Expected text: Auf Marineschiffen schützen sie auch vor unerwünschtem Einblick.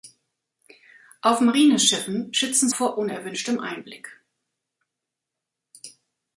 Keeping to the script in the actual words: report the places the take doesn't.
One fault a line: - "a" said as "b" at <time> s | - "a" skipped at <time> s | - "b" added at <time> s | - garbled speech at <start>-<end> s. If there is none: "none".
- "sie auch" skipped at 2.7 s